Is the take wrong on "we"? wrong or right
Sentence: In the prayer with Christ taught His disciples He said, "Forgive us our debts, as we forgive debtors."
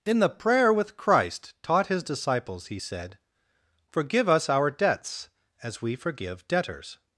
right